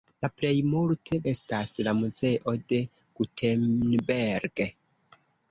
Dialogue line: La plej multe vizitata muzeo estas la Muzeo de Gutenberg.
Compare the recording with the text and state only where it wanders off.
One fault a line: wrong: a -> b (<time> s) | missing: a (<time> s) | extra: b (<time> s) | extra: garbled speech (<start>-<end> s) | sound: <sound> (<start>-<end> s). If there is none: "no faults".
missing: vizitata muzeo (1.2 s)